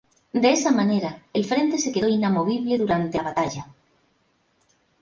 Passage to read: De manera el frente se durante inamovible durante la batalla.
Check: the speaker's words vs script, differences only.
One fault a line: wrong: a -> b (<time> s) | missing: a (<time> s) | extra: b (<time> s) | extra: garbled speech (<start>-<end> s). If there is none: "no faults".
extra: esa (0.5 s)
wrong: durante -> quedó (1.9 s)